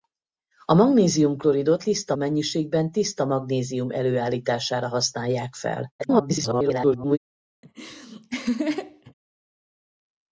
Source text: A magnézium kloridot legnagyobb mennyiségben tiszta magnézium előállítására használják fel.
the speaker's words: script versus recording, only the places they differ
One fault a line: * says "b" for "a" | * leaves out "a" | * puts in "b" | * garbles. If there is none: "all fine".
* says "tiszta" for "legnagyobb"
* garbles